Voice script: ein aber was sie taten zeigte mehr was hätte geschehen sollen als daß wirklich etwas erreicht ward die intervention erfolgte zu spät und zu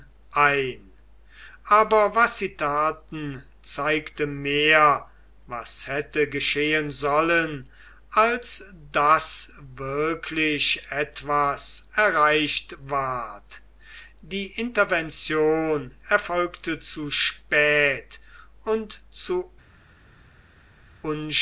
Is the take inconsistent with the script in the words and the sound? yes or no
no